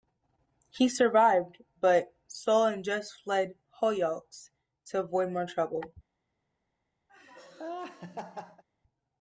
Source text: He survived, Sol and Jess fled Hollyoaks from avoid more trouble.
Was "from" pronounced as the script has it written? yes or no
no